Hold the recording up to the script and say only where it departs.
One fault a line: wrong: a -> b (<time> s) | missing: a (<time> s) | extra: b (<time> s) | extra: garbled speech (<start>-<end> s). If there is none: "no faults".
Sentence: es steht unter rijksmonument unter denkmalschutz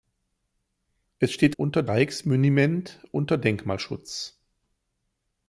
no faults